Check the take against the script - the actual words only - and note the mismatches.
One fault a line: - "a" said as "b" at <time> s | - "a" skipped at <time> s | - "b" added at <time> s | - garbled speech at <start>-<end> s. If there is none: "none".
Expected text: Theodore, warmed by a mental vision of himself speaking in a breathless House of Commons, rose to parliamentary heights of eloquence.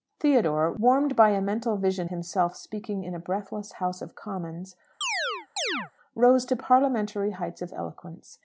- "of" skipped at 2.1 s